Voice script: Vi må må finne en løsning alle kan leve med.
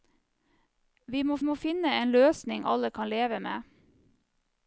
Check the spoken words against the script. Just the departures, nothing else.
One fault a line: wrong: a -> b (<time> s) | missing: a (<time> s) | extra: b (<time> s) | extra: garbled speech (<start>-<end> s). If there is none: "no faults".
no faults